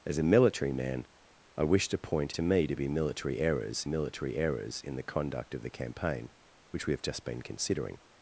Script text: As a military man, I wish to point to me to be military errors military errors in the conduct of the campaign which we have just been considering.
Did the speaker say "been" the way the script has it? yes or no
yes